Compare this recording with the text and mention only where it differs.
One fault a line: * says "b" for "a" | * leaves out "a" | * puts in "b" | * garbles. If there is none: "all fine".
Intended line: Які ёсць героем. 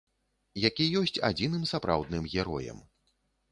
* puts in "адзіным сапраўдным"